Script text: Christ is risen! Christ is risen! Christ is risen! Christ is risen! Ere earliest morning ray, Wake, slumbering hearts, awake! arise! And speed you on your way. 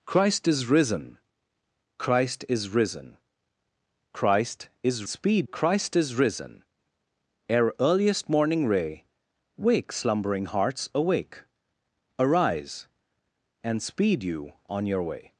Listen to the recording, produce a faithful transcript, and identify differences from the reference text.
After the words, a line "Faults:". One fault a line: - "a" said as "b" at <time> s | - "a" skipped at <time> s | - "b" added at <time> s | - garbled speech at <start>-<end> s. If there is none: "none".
Christ is risen! Christ is risen! Christ is speed! Christ is risen! Ere earliest morning ray, Wake, slumbering hearts, awake! arise! And speed you on your way.
Faults:
- "risen" said as "speed" at 5.1 s